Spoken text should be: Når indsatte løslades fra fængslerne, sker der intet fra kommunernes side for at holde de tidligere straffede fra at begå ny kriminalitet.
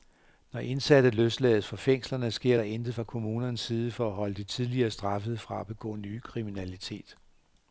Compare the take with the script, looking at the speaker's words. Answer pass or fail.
pass